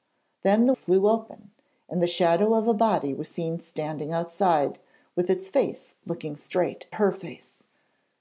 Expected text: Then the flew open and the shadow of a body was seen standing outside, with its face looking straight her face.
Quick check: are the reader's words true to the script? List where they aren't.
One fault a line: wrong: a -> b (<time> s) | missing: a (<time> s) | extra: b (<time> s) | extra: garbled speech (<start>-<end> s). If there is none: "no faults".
no faults